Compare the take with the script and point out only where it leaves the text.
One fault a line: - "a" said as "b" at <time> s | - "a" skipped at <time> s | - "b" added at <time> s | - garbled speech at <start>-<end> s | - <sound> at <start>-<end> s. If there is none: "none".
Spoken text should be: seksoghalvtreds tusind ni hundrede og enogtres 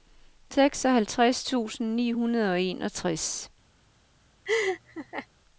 - laugh at 4.5-5.3 s